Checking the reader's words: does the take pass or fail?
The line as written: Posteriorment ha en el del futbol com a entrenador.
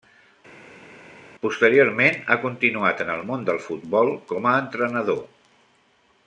fail